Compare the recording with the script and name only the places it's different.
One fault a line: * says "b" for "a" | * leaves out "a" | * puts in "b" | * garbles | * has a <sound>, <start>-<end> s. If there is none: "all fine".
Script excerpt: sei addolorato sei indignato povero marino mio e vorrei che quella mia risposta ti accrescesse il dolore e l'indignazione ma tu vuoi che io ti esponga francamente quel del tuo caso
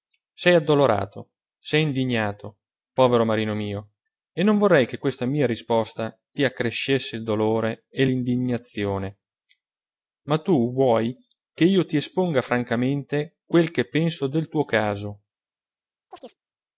* puts in "non"
* says "questa" for "quella"
* puts in "che penso"
* has a chirp, 16.1-16.4 s